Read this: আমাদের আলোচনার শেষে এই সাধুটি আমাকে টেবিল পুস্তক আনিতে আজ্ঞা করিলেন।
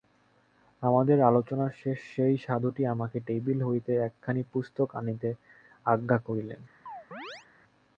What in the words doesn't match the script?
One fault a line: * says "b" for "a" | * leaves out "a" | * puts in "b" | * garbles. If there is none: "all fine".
* says "সেই" for "এই"
* puts in "হইতে একখানি"